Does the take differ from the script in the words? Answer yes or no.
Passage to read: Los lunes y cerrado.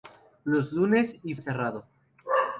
no